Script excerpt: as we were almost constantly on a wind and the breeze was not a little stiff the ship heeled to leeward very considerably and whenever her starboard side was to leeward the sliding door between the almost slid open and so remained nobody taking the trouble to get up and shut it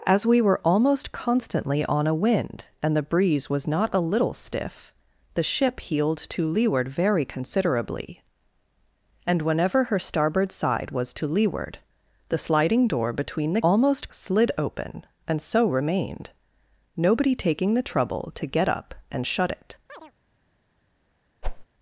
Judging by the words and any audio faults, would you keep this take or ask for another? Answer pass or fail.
fail